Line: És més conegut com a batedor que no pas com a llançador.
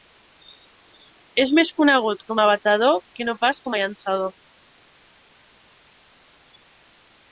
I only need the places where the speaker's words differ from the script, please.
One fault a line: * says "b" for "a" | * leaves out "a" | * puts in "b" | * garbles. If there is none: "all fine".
all fine